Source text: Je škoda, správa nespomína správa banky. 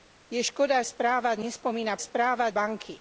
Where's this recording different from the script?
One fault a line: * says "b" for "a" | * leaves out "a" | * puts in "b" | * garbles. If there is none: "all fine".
all fine